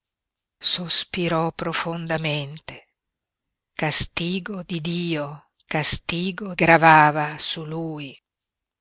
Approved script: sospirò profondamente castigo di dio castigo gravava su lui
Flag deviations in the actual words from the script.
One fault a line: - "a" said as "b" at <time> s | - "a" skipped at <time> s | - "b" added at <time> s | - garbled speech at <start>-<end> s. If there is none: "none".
none